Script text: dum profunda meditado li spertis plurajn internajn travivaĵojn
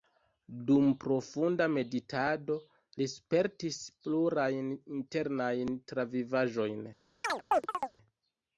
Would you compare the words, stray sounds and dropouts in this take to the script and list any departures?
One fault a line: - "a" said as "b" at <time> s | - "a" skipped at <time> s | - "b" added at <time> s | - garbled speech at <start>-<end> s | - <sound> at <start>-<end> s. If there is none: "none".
- chirp at 7.2-8.0 s